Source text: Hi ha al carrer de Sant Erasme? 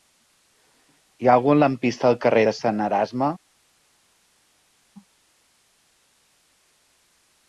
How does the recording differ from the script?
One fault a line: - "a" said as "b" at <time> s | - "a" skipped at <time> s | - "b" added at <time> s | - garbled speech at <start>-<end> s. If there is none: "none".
- "algun lampista" added at 1.4 s